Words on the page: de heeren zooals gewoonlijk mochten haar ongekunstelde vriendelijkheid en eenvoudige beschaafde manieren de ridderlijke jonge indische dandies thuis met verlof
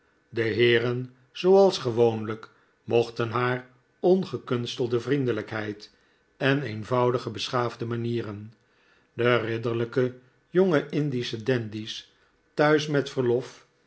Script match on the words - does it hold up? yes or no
yes